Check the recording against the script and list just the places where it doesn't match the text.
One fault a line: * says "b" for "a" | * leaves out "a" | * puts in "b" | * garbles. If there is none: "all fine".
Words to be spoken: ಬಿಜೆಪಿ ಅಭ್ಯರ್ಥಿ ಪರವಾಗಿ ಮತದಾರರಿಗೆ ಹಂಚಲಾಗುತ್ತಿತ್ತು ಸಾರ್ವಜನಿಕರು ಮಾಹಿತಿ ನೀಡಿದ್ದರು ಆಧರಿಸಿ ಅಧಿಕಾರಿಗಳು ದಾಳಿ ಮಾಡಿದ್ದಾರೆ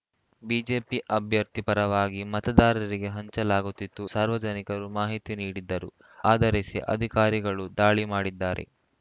all fine